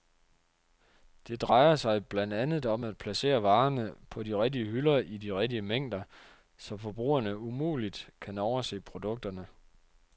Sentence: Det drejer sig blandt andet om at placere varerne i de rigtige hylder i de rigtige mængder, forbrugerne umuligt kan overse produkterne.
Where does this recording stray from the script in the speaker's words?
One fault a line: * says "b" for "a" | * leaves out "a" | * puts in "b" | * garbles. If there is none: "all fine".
* says "på" for "i"
* puts in "så"